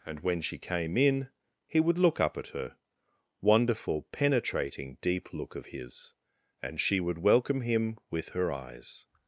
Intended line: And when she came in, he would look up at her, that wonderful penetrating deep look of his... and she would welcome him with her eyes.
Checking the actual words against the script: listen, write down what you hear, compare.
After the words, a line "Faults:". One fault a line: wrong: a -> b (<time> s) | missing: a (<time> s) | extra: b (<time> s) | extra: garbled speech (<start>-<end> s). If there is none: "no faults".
And when she came in, he would look up at her, wonderful penetrating deep look of his... and she would welcome him with her eyes.
Faults:
missing: that (2.8 s)